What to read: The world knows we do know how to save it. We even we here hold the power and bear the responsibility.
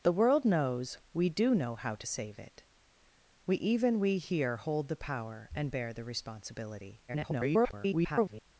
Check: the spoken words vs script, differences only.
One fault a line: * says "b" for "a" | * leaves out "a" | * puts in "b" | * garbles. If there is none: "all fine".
* garbles